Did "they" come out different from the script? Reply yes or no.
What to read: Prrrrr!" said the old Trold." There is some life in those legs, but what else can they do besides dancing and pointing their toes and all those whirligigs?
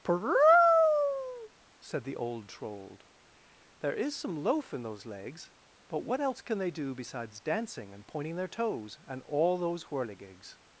no